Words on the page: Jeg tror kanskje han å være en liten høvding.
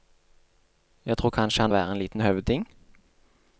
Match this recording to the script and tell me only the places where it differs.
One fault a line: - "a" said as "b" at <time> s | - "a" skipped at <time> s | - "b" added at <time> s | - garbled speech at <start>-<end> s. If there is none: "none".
none